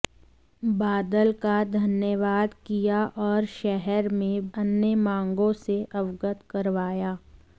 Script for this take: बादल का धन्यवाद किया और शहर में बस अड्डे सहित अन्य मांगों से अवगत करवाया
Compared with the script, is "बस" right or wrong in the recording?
wrong